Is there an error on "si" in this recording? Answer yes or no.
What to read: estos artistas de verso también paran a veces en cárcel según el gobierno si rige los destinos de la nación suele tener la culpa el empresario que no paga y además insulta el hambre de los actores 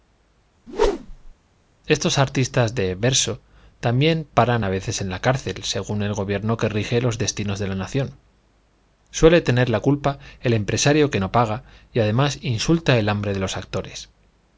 yes